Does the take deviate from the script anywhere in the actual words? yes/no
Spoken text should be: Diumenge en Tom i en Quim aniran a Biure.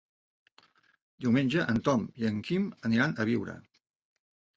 no